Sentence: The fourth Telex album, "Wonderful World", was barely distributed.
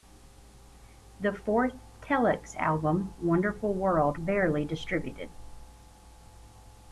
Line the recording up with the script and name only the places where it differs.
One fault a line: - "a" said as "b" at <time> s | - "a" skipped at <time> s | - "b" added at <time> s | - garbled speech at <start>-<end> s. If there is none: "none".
- "was" skipped at 4.2 s